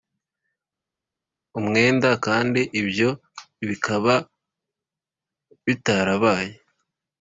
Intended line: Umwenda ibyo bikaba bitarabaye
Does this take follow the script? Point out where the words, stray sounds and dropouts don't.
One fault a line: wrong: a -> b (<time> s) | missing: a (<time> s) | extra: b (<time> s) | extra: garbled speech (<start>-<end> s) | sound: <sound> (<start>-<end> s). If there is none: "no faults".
extra: kandi (2.2 s)